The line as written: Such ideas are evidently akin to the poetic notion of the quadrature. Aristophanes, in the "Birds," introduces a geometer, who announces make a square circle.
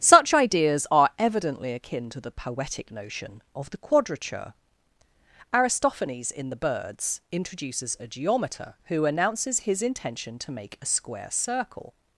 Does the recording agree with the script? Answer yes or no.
no